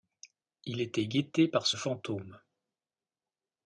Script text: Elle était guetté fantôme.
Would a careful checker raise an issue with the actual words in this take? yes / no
yes